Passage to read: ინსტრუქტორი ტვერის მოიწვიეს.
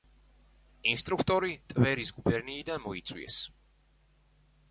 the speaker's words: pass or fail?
fail